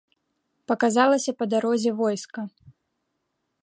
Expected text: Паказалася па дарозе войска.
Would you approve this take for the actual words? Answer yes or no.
yes